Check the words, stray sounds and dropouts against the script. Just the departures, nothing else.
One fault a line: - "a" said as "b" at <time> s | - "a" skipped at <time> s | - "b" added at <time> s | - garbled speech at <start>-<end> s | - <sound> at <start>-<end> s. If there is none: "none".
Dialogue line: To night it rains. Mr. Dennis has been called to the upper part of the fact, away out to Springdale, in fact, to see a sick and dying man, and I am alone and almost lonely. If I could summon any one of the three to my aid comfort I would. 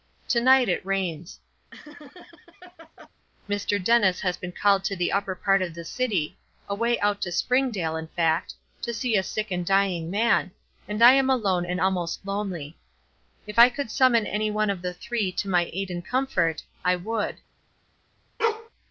- laugh at 1.7-3.1 s
- "fact" said as "city" at 5.8 s
- "and" added at 15.9 s
- bark at 18.4-18.7 s